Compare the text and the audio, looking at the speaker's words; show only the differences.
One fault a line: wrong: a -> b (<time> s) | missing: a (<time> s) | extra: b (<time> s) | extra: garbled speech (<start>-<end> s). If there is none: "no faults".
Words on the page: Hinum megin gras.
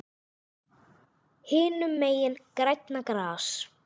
extra: grænna (2.6 s)